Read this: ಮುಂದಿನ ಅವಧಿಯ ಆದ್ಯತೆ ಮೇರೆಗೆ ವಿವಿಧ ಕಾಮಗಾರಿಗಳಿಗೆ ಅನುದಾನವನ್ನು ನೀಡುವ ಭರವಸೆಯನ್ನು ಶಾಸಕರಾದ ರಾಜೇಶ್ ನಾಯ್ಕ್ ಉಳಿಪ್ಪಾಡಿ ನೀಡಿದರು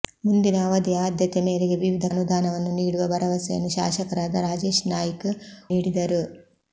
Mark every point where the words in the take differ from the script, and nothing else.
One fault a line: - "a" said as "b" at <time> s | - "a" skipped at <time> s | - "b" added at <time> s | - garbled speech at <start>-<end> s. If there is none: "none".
- "ಕಾಮಗಾರಿಗಳಿಗೆ" skipped at 2.0 s
- "ಉಳಿಪ್ಪಾಡಿ" skipped at 5.3 s